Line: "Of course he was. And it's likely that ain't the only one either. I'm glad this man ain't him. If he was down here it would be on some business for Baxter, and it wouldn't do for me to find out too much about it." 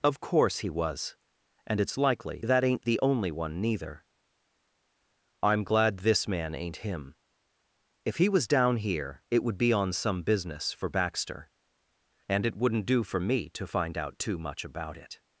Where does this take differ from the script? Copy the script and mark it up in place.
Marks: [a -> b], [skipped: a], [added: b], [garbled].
"Of course he was. And it's likely that ain't the only one [either. -> neither] I'm glad this man ain't him. If he was down here it would be on some business for Baxter, and it wouldn't do for me to find out too much about it."